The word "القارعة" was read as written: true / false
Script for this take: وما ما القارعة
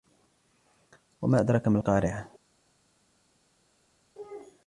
true